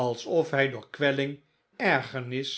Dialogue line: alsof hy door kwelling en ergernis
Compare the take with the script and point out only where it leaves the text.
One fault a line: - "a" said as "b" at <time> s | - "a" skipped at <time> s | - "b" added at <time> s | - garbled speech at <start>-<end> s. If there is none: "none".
- "en" skipped at 1.3 s